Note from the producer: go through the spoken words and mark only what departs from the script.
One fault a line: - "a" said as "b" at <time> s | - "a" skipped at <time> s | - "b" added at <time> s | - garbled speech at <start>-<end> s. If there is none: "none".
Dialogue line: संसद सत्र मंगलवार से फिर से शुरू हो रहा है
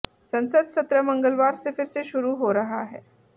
none